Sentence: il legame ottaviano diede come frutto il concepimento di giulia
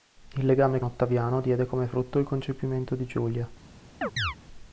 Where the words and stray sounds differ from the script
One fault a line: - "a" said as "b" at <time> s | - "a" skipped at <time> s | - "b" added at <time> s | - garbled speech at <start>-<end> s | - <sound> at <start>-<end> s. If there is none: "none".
- chirp at 4.0-4.4 s